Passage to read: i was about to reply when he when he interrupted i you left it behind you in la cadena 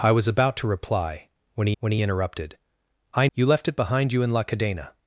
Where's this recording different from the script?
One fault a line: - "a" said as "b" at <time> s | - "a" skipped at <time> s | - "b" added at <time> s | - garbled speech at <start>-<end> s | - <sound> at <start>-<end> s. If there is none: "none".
none